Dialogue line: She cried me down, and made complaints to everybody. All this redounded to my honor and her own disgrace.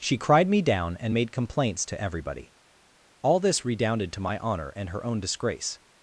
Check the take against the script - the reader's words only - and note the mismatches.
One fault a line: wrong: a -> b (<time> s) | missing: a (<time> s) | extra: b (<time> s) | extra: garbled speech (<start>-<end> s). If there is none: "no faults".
no faults